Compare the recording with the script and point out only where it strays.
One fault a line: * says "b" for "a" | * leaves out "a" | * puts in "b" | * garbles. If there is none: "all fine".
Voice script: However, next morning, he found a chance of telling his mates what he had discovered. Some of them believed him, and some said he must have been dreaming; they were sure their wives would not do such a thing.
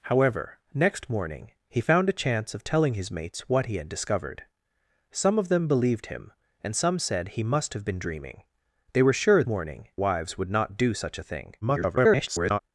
* says "morning" for "their"
* garbles